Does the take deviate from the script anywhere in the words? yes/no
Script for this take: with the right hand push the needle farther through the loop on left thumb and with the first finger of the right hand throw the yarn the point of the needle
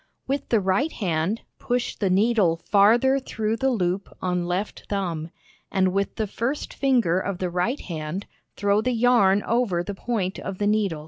yes